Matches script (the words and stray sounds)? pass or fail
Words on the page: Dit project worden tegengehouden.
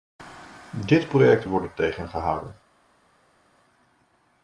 pass